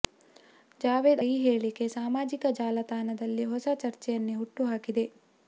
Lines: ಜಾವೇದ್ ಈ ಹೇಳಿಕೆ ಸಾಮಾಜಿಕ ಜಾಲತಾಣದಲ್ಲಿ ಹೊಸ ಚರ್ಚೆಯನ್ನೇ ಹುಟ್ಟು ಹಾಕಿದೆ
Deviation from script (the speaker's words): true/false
false